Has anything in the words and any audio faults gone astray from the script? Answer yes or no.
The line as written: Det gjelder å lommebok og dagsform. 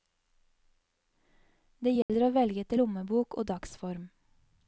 yes